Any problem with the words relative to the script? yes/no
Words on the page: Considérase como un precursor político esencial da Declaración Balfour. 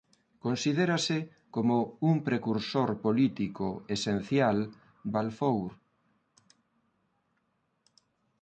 yes